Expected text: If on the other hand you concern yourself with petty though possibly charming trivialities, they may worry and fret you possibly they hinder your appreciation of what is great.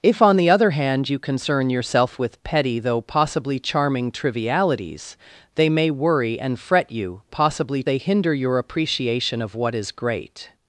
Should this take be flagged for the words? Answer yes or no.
no